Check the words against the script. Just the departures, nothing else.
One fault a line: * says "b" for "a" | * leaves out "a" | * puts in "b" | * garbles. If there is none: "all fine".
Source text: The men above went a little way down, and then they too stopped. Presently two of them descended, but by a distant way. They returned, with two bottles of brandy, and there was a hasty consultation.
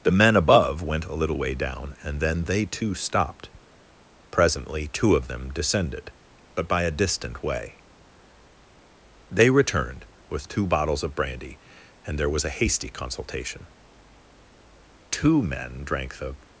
* puts in "Two men drank the"